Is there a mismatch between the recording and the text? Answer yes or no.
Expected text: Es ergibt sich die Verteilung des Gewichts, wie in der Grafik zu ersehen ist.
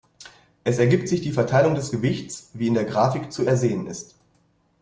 no